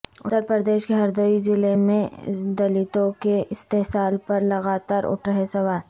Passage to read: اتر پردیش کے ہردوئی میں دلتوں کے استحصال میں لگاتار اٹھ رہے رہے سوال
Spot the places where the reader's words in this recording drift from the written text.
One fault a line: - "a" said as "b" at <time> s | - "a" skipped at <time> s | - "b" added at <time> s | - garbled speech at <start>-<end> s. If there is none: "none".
- "ضلع" added at 1.4 s
- "میں" said as "پر" at 4.3 s
- "رہے" skipped at 5.5 s